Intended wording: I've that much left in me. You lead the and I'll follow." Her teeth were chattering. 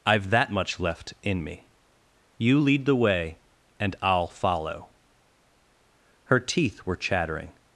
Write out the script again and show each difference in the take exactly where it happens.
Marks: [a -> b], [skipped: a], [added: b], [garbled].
I've that much left in me. You lead the [added: way] and I'll follow." Her teeth were chattering.